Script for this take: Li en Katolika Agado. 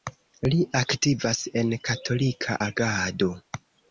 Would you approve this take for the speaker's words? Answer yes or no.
no